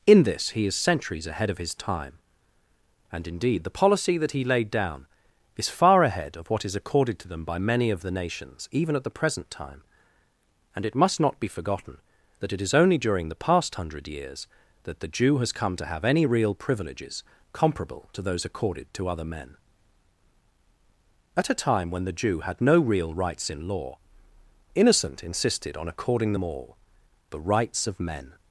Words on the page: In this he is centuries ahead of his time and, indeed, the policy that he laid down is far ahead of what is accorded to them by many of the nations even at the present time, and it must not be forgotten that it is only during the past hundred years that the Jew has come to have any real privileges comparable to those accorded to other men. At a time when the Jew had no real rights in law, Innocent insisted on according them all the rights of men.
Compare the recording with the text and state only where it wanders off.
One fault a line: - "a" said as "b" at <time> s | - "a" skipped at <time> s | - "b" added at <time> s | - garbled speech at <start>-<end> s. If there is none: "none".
none